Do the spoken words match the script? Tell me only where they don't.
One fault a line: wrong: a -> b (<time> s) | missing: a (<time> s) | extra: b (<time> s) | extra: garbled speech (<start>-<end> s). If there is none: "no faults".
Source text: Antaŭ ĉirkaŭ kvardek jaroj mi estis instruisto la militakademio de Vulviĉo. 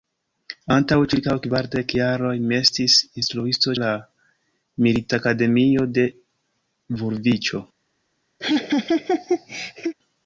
no faults